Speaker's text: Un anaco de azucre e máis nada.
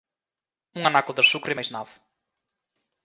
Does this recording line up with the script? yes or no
yes